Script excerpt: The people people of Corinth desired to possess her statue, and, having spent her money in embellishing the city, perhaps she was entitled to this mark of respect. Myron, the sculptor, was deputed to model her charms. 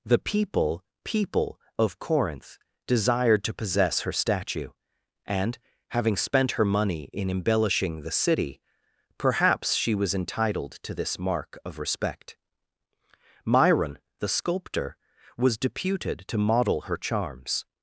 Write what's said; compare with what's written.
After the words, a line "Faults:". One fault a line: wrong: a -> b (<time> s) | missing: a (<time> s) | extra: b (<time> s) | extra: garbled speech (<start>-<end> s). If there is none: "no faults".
The people people of Corinth desired to possess her statue, and, having spent her money in embellishing the city, perhaps she was entitled to this mark of respect. Myron, the sculptor, was deputed to model her charms.
Faults:
no faults